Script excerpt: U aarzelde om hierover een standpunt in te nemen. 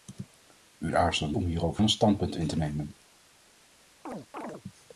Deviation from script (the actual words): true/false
false